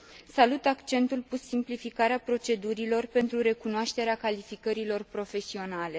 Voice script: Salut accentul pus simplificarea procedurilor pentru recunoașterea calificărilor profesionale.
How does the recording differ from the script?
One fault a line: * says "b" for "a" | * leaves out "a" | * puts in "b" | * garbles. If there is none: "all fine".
all fine